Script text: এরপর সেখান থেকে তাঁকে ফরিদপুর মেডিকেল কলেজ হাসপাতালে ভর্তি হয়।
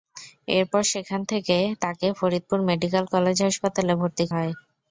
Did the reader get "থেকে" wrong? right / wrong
right